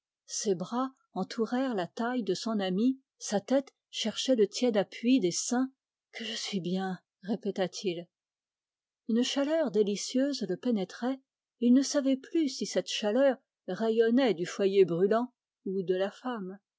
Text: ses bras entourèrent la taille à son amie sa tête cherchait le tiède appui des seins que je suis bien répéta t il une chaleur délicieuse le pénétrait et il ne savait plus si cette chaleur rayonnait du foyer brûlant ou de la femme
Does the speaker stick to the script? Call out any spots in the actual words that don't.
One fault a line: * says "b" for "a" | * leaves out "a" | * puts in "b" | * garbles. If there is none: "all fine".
* says "de" for "à"